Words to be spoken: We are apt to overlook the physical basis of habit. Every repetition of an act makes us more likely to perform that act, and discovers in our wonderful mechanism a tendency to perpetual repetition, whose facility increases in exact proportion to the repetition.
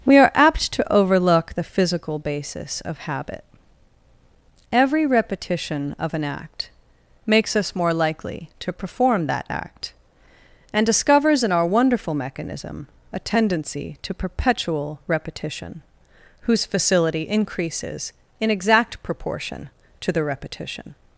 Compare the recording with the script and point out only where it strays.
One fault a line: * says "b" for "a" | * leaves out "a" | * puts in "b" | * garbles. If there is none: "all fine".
all fine